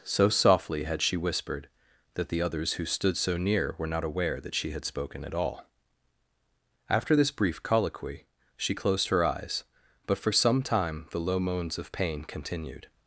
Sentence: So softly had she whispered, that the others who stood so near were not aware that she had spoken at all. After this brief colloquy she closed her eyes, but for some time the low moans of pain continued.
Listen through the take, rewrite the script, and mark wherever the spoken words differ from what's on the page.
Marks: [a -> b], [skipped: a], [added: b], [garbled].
So softly had she whispered, that the others who stood so near were not aware that she had spoken at all. After this brief colloquy she closed her eyes, but for some time the low moans of pain continued.